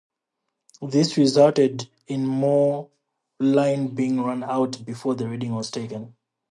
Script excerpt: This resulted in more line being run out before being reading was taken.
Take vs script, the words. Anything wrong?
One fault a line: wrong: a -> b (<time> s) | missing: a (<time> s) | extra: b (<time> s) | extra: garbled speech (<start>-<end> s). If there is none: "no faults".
wrong: being -> the (5.2 s)